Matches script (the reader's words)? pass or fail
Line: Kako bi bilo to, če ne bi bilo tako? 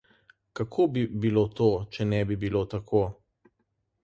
pass